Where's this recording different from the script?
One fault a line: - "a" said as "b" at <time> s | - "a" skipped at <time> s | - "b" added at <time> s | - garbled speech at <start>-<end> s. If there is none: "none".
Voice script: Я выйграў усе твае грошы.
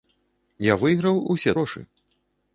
- "твае" skipped at 1.6 s